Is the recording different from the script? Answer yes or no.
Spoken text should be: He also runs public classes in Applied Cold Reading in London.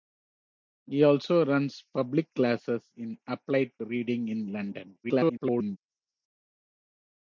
yes